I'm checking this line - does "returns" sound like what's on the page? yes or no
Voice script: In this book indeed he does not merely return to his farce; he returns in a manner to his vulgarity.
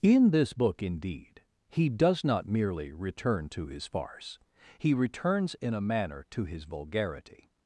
yes